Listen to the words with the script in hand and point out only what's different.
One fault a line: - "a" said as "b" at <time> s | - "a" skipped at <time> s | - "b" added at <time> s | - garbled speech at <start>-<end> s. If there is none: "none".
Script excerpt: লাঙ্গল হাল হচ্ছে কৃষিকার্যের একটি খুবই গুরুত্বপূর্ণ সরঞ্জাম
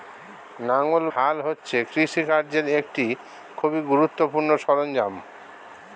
none